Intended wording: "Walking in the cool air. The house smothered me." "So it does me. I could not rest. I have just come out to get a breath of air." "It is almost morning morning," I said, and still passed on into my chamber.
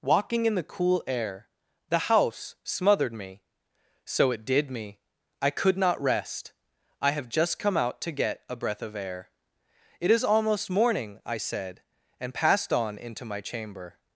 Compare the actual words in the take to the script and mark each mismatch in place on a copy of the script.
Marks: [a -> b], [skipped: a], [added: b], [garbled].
"Walking in the cool air. The house smothered me." "So it [does -> did] me. I could not rest. I have just come out to get a breath of air." "It is almost morning [skipped: morning,"] I said, and [skipped: still] passed on into my chamber.